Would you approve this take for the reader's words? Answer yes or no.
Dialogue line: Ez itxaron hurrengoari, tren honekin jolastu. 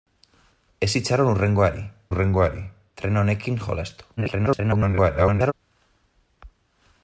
no